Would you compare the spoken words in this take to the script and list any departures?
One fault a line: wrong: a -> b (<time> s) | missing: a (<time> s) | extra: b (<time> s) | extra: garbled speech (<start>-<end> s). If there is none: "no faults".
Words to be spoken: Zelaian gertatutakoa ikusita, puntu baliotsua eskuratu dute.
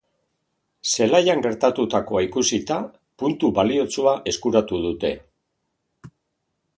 no faults